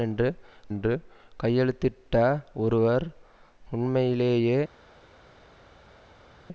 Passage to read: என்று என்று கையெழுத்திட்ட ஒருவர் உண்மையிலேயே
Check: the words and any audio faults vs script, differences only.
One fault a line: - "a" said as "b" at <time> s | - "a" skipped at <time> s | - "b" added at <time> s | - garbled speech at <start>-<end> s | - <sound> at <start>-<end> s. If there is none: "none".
none